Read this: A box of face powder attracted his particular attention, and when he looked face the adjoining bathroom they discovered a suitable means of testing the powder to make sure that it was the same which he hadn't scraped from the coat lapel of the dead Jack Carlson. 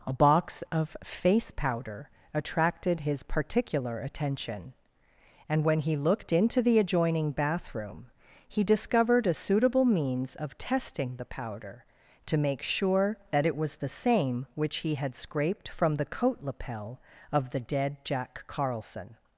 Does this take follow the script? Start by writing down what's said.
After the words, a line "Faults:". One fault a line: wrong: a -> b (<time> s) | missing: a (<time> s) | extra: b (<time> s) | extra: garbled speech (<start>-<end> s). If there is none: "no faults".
A box of face powder attracted his particular attention, and when he looked into the adjoining bathroom he discovered a suitable means of testing the powder to make sure that it was the same which he had scraped from the coat lapel of the dead Jack Carlson.
Faults:
wrong: face -> into (6.3 s)
wrong: they -> he (8.5 s)
wrong: hadn't -> had (14.9 s)